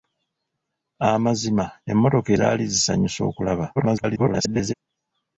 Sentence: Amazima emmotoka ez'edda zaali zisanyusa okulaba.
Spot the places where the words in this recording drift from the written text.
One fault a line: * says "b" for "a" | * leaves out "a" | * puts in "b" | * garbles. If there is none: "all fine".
* leaves out "ez'edda"
* garbles